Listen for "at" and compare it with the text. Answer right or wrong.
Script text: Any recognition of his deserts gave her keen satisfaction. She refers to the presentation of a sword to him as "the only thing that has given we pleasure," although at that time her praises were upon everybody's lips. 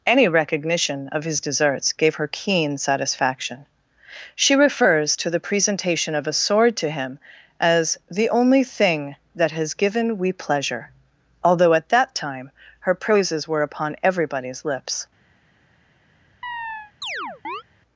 right